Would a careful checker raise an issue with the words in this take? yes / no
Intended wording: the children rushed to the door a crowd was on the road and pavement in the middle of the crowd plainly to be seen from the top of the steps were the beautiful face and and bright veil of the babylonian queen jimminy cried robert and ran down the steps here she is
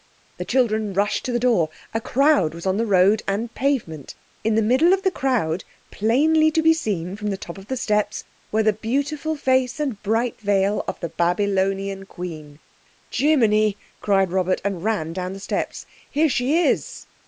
yes